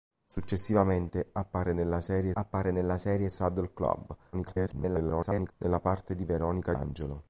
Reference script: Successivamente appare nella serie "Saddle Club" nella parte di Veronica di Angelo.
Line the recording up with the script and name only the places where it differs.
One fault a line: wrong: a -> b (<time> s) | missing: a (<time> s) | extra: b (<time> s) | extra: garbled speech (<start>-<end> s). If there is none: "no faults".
extra: appare nella serie (2.3 s)
extra: garbled speech (4.3-5.5 s)
missing: di (6.7 s)